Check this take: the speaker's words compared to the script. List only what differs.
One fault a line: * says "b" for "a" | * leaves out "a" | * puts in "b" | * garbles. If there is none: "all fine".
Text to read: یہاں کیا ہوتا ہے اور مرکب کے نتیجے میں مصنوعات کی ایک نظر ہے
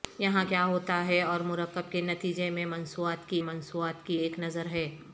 * puts in "مصنوعات کی"